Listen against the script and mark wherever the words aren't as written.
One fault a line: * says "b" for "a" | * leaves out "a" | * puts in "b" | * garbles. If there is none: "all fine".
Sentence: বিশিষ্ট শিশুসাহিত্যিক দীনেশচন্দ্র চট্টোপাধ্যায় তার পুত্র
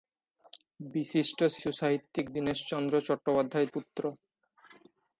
* leaves out "তার"